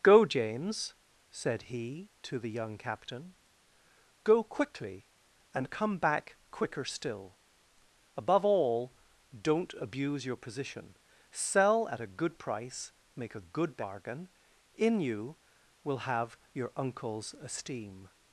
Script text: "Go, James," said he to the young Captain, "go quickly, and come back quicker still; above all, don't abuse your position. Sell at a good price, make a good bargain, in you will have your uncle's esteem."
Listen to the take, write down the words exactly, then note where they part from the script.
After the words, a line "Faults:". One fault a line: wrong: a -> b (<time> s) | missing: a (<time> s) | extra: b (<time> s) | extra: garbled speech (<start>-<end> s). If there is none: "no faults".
"Go, James," said he to the young Captain, "go quickly, and come back quicker still; above all, don't abuse your position. Sell at a good price, make a good bargain, in you will have your uncle's esteem."
Faults:
no faults